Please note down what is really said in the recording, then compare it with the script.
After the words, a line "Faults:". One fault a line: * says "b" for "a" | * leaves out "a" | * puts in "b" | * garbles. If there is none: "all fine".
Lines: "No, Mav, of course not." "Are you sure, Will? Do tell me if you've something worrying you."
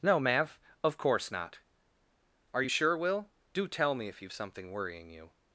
"No, Mav, of course not." "Are you sure, Will? Do tell me if you've something worrying you."
Faults:
all fine